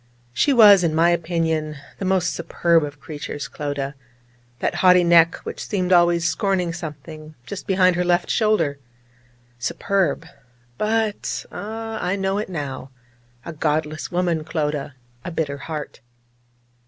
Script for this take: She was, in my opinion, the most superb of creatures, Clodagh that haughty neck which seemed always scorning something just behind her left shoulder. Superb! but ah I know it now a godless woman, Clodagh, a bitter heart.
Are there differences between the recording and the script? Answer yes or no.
no